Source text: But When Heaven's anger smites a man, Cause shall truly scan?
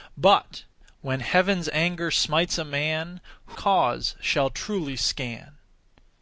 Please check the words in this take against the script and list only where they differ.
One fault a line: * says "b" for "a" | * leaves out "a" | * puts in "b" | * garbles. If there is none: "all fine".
all fine